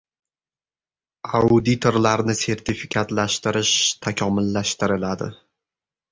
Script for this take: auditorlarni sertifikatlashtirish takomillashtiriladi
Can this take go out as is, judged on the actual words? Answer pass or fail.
pass